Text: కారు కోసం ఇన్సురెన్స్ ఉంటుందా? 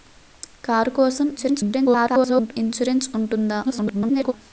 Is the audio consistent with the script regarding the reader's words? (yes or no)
no